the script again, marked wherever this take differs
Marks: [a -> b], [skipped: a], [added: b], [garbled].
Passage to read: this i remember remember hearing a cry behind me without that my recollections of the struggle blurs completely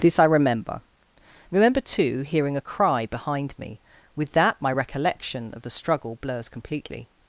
this i remember remember [added: too] hearing a cry behind me [without -> with] that my [recollections -> recollection] of the struggle blurs completely